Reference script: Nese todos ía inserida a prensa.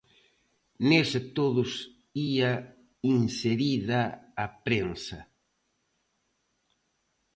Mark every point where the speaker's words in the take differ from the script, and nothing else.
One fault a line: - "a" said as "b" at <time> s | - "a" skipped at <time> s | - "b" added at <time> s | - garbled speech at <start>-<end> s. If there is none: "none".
none